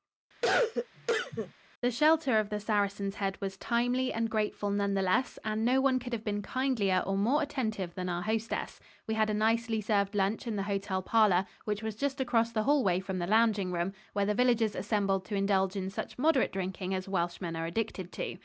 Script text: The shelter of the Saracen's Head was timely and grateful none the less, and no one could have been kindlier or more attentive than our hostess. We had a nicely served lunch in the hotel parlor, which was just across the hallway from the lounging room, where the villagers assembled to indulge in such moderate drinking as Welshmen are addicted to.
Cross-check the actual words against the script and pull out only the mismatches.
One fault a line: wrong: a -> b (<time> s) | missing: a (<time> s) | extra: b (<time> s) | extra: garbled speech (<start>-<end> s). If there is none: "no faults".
no faults